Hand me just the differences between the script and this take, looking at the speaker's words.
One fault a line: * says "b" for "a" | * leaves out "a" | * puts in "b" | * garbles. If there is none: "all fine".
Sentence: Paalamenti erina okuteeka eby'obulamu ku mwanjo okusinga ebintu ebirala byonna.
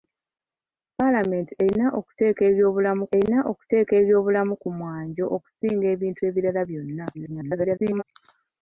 * puts in "erina okuteeka eby'obulamu"
* garbles